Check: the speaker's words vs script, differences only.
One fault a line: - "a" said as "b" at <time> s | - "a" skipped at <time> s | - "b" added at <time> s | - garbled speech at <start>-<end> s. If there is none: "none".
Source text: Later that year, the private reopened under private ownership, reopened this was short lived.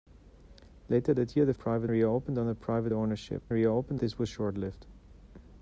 none